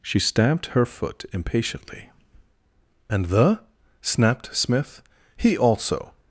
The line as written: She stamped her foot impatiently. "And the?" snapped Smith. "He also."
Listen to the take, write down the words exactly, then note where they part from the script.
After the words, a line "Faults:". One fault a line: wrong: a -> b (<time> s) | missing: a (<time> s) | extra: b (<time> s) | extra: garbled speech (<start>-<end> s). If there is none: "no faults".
She stamped her foot impatiently. "And the?" snapped Smith. "He also."
Faults:
no faults